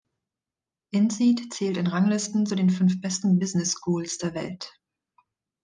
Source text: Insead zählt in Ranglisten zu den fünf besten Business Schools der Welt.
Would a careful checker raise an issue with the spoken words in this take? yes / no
no